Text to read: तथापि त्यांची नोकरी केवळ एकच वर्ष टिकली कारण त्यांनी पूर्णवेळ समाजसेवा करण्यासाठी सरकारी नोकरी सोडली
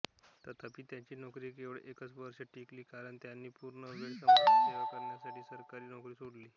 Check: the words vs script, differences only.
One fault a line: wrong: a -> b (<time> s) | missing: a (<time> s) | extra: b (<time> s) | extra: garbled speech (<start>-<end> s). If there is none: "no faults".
no faults